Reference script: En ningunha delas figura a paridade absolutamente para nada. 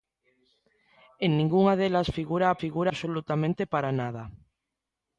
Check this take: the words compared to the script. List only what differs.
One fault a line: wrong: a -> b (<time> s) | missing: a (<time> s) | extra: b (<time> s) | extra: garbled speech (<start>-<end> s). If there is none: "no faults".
wrong: paridade -> figura (2.6 s)